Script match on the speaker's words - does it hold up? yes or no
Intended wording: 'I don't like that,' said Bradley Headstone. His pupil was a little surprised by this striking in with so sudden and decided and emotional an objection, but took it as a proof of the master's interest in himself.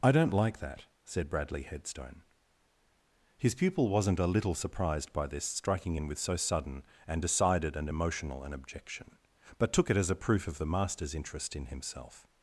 no